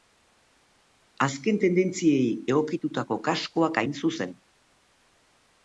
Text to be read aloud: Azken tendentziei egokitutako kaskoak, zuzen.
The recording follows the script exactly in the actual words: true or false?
false